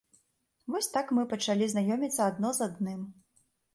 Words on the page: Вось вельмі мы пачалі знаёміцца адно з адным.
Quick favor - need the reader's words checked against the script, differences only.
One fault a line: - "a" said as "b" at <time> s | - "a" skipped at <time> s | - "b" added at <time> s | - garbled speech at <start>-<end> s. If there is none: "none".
- "вельмі" said as "так" at 0.9 s